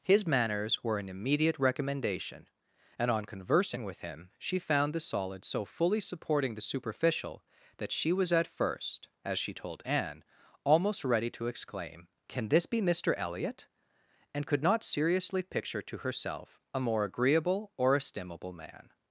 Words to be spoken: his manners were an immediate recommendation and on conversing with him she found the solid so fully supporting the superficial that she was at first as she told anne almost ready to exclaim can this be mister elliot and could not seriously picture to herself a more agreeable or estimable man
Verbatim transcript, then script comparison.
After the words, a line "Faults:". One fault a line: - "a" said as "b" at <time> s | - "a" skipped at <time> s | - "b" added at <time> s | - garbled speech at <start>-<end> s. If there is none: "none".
his manners were an immediate recommendation and on conversing with him she found the solid so fully supporting the superficial that she was at first as she told anne almost ready to exclaim can this be mister elliot and could not seriously picture to herself a more agreeable or estimable man
Faults:
none